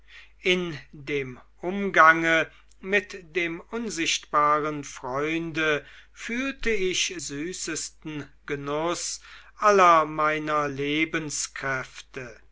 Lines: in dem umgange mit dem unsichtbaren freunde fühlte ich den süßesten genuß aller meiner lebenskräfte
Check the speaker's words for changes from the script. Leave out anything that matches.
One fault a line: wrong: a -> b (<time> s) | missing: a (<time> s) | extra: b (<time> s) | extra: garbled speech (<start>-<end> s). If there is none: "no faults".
missing: den (7.1 s)